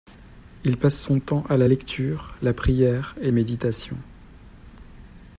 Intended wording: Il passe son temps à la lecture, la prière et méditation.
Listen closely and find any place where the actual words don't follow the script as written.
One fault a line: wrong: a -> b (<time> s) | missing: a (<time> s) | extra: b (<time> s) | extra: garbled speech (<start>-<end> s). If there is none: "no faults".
no faults